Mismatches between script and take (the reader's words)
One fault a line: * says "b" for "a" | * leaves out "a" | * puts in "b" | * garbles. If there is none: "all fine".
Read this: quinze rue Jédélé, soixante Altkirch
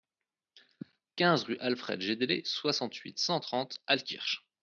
* puts in "Alfred"
* puts in "huit cent trente"